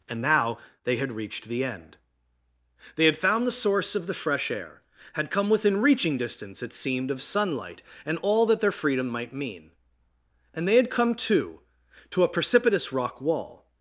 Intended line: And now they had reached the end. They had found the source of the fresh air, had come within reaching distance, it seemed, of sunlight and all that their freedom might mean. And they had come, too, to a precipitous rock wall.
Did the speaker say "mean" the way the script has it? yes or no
yes